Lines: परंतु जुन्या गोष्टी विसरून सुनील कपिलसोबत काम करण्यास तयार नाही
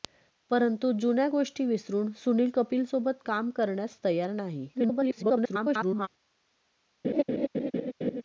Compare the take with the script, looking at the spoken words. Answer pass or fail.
fail